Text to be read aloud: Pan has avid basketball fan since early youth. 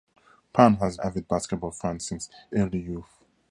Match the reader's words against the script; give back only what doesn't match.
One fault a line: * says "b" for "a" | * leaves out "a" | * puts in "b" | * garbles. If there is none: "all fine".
all fine